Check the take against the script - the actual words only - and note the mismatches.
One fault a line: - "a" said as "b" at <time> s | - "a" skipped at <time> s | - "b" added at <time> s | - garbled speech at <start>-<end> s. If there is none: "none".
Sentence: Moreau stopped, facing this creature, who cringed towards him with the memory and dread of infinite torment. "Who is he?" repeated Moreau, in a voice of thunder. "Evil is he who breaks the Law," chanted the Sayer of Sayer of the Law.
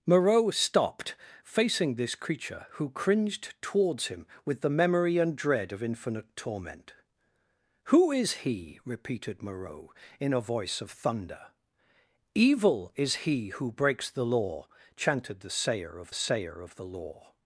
none